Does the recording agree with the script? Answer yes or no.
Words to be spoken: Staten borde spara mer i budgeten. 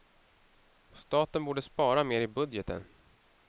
yes